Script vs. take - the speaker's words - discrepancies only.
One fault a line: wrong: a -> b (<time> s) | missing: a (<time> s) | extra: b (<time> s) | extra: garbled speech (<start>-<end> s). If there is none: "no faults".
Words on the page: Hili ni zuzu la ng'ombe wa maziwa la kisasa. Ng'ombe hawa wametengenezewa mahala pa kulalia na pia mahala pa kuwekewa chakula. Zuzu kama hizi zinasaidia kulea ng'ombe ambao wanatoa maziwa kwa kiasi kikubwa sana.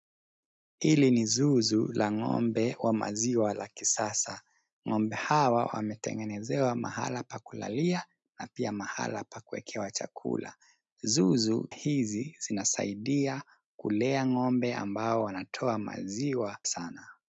missing: kama (11.7 s)
missing: kwa kiasi kikubwa (16.6 s)